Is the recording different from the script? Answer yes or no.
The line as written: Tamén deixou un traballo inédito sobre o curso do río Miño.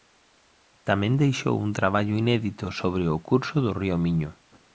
no